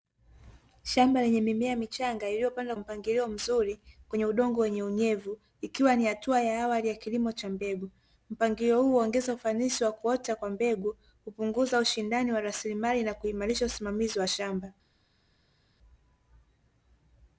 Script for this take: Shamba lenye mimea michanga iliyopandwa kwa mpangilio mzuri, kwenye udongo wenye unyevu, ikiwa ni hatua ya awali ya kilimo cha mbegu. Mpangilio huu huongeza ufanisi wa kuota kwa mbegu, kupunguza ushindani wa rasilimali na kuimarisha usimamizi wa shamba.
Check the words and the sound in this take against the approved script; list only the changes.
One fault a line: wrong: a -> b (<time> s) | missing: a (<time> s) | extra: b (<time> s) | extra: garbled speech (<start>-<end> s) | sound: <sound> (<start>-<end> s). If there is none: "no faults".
missing: kwa (2.8 s)